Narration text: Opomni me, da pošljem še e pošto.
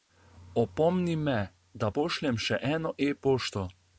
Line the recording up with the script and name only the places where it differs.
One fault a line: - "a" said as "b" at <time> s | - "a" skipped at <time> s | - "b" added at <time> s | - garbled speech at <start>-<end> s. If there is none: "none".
- "eno" added at 2.7 s